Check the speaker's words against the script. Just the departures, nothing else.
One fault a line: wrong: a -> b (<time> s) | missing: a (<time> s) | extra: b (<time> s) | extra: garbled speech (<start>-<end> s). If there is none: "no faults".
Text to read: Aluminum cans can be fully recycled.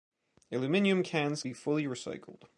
missing: can (1.4 s)